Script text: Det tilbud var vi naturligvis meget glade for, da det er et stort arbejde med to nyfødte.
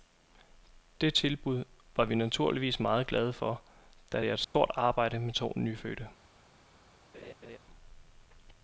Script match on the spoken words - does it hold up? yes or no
yes